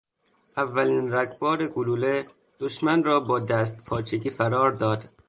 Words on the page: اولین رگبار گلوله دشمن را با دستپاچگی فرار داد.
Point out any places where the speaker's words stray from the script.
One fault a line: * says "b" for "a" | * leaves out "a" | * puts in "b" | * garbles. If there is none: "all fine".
all fine